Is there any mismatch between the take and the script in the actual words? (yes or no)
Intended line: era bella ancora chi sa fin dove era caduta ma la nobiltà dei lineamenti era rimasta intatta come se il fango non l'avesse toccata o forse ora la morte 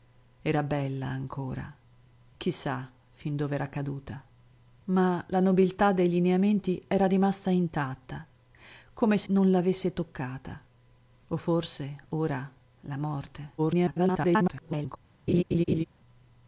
yes